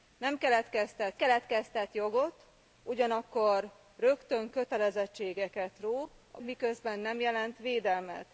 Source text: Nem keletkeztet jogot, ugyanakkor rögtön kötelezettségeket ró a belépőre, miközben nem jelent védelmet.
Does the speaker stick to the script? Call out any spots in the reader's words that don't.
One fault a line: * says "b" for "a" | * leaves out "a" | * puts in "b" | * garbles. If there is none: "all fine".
* puts in "keletkeztet"
* leaves out "belépőre"